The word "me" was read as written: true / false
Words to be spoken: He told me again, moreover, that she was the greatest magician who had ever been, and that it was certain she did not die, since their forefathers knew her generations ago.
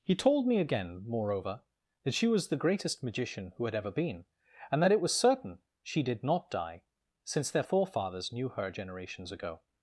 true